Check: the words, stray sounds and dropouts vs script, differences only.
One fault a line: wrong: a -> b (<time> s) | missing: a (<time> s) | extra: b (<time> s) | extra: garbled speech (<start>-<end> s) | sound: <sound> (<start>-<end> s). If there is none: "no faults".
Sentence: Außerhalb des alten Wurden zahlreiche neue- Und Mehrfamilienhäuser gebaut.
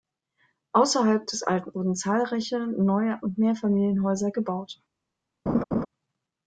sound: laugh (5.5-5.9 s)